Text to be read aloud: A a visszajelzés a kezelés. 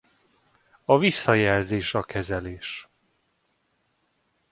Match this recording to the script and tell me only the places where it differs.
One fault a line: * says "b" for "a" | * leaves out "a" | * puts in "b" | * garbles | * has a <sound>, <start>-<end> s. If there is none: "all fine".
* leaves out "a"